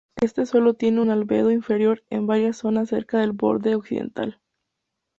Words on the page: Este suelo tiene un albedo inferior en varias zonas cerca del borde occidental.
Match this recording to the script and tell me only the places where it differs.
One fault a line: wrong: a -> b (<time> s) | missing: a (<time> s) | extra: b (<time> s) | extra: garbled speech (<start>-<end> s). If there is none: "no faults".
no faults